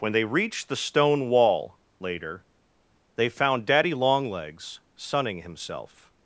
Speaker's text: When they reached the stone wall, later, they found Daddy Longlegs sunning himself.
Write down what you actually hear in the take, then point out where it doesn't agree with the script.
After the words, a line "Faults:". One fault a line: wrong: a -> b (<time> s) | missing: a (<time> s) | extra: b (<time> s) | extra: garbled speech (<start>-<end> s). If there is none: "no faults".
When they reached the stone wall, later, they found Daddy Longlegs sunning himself.
Faults:
no faults